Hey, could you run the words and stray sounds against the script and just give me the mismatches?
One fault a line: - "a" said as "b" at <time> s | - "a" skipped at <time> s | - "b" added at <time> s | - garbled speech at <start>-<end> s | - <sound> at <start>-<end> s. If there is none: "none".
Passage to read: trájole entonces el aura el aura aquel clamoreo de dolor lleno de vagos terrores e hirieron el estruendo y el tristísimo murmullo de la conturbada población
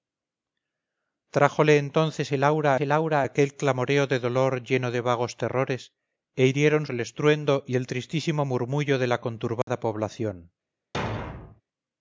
- dropout at 9.6-9.7 s
- thud at 10.9-11.6 s